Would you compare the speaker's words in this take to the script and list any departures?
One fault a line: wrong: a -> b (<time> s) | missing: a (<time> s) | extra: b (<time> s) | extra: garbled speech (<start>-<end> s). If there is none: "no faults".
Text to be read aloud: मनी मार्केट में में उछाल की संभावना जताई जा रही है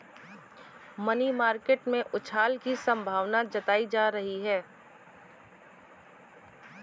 missing: में (2.0 s)